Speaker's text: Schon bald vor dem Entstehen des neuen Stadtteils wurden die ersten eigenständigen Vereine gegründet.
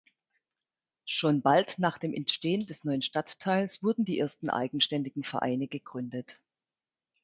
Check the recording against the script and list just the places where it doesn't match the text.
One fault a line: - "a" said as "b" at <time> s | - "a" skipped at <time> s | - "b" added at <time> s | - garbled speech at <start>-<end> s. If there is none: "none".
- "vor" said as "nach" at 1.8 s